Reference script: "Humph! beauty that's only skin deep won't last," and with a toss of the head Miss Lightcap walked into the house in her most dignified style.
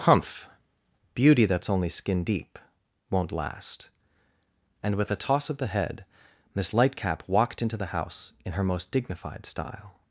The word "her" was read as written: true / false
true